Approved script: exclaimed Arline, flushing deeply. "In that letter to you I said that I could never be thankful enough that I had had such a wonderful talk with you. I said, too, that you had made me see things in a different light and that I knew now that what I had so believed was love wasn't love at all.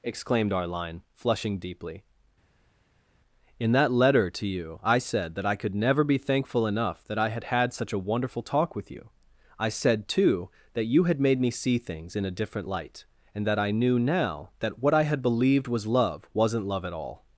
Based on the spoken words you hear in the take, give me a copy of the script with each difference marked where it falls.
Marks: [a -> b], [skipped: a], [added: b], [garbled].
exclaimed Arline, flushing deeply. "In that letter to you I said that I could never be thankful enough that I had had such a wonderful talk with you. I said, too, that you had made me see things in a different light and that I knew now that what I had [skipped: so] believed was love wasn't love at all.